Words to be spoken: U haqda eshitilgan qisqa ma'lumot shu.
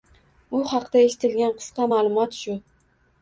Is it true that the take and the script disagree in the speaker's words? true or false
false